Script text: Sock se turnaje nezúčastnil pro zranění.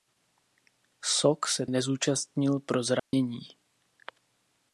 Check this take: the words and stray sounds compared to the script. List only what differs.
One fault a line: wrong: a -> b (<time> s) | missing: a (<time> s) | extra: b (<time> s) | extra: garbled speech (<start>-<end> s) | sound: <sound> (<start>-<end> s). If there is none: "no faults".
missing: turnaje (1.6 s)
sound: dropout (3.0-3.1 s)